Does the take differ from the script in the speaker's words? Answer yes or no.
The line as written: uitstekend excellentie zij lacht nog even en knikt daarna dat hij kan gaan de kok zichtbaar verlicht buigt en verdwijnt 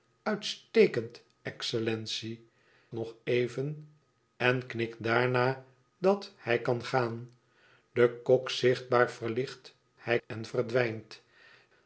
yes